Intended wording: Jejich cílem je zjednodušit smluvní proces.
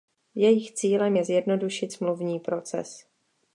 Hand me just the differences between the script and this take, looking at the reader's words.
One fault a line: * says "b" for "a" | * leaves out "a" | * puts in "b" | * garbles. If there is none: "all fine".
all fine